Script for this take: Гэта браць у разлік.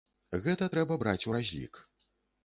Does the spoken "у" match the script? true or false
true